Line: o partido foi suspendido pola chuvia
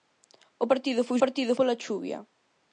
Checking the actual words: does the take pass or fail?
fail